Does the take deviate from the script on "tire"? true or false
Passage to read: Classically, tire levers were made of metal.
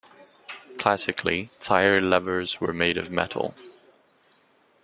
false